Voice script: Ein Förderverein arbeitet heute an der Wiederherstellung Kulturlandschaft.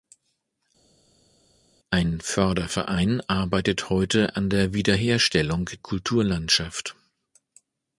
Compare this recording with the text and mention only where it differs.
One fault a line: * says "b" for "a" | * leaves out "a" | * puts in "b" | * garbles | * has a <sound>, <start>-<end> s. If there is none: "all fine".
all fine